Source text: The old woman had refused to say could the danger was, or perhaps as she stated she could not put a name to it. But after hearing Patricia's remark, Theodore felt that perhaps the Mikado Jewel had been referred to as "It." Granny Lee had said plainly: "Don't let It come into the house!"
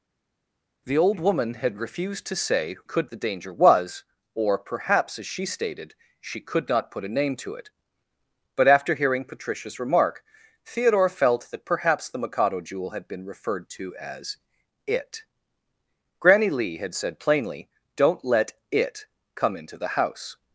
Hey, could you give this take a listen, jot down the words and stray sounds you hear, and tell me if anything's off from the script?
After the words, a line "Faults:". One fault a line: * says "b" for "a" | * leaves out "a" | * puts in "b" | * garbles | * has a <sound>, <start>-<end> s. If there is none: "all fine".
The old woman had refused to say could the danger was, or perhaps as she stated she could not put a name to it. But after hearing Patricia's remark, Theodore felt that perhaps the Mikado Jewel had been referred to as "It." Granny Lee had said plainly: "Don't let It come into the house!"
Faults:
all fine